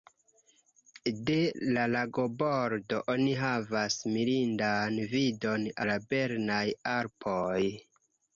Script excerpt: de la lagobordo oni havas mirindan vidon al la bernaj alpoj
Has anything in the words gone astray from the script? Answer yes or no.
yes